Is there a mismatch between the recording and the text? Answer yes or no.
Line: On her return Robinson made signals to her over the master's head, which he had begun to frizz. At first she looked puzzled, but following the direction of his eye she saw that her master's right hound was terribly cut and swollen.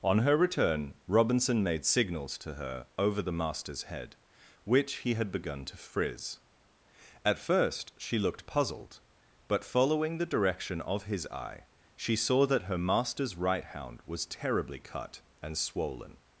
no